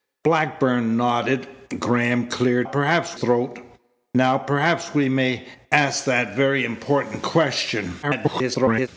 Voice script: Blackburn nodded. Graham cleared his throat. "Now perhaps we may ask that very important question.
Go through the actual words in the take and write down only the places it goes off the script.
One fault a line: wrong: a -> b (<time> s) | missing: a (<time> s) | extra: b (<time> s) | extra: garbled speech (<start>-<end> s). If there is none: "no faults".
wrong: his -> perhaps (2.6 s)
extra: garbled speech (8.0-8.9 s)